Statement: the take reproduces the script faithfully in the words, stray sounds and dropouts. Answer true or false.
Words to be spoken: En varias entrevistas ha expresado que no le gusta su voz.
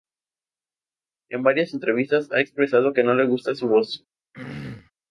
false